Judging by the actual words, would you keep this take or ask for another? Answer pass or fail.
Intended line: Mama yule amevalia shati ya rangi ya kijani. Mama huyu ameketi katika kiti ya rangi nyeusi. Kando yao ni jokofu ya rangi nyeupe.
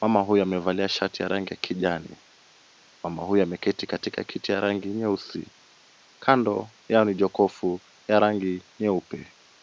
fail